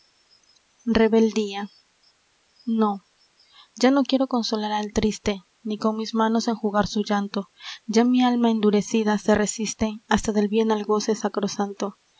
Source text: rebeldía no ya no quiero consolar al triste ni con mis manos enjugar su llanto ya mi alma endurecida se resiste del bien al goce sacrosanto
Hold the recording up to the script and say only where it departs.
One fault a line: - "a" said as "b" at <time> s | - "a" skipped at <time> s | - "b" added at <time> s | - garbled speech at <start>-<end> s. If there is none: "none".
- "hasta" added at 10.1 s